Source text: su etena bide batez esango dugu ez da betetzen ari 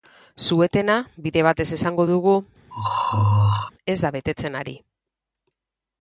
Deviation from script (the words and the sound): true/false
true